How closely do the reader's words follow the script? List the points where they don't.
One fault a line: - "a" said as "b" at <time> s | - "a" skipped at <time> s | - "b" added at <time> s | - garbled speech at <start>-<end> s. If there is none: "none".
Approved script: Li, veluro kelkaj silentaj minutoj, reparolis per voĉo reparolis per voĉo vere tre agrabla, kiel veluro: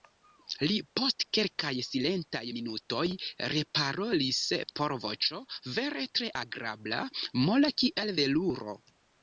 - "veluro" said as "post" at 1.0 s
- "reparolis per voĉo" skipped at 5.4 s
- "mola" added at 7.5 s